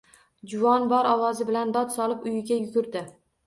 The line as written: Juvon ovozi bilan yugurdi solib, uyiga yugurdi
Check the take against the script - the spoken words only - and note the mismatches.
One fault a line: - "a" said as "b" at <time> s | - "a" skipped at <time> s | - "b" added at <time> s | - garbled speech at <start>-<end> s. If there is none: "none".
- "bor" added at 0.9 s
- "yugurdi" said as "dod" at 1.8 s